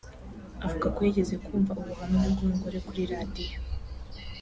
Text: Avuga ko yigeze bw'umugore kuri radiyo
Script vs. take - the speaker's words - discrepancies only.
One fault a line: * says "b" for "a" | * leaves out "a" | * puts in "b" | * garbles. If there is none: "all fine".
* puts in "kumva ubuhamya"